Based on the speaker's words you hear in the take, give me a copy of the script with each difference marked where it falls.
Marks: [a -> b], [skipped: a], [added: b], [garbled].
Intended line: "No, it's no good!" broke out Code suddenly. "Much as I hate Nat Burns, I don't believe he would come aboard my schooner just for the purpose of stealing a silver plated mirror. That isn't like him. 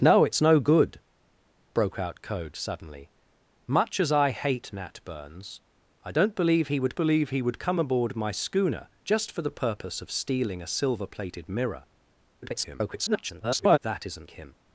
"No, it's no good!" broke out Code suddenly. "Much as I hate Nat Burns, I don't believe he would [added: believe he would] come aboard my schooner just for the purpose of stealing a silver plated mirror. [garbled] That isn't [skipped: like] him.